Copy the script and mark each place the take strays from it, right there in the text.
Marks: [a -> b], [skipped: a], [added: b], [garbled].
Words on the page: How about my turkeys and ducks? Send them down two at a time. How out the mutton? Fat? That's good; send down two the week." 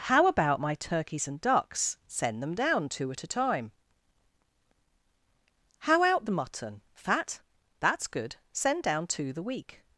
How about my turkeys and ducks? Send them down two at a time. How out the mutton? Fat? That's good; send down two the week."